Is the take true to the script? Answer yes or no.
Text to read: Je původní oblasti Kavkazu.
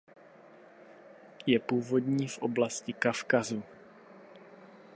no